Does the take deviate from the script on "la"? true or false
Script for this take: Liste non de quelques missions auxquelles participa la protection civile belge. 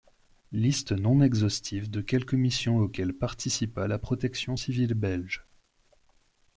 false